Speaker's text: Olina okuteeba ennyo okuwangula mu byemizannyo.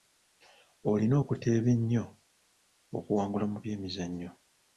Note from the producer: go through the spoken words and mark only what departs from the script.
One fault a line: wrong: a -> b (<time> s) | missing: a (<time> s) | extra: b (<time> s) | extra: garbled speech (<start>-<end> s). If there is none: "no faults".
no faults